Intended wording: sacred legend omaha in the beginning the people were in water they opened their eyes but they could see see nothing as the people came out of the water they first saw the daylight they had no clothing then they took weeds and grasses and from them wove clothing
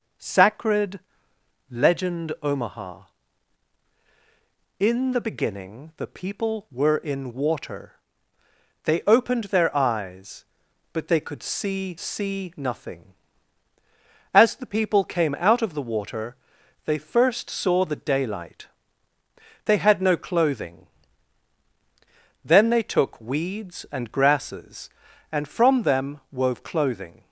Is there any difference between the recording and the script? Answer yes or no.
no